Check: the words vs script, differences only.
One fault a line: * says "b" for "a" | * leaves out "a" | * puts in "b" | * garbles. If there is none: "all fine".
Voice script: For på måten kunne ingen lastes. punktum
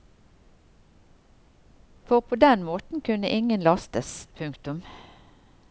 * puts in "den"